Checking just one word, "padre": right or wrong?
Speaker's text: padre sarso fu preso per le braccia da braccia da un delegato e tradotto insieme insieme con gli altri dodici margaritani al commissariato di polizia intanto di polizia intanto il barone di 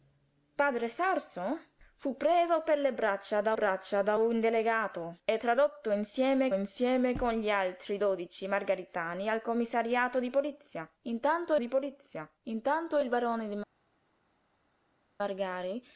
right